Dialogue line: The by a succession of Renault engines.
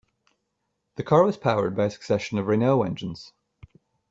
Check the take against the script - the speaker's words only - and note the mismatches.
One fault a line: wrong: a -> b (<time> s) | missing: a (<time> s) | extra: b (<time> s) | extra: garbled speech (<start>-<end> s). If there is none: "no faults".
extra: car was powered (1.0 s)